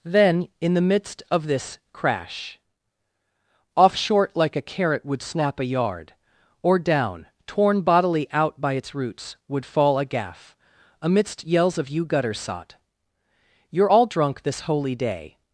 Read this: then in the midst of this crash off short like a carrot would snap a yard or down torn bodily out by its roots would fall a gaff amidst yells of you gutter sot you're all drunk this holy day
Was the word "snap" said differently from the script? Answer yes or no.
no